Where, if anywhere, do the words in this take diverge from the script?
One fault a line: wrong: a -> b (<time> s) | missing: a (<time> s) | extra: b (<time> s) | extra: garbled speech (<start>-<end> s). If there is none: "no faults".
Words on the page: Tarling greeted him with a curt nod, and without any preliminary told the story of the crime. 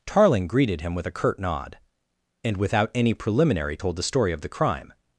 no faults